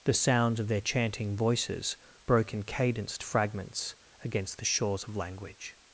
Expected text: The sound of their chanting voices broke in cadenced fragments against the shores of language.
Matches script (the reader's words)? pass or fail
fail